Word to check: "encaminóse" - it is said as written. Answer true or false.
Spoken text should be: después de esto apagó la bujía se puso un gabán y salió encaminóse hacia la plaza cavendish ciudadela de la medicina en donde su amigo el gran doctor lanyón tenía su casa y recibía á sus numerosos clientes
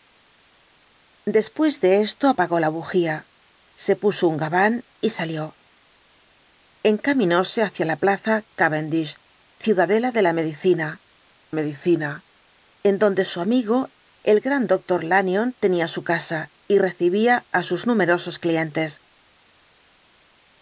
true